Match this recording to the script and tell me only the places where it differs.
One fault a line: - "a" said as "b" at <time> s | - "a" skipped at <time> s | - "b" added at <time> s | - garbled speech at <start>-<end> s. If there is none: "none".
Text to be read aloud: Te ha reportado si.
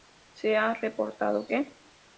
- "Te" said as "Se" at 0.3 s
- "si" said as "que" at 1.5 s